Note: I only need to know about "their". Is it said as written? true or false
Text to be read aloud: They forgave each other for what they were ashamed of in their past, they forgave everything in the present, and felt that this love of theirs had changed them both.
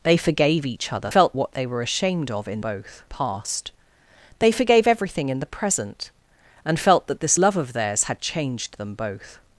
false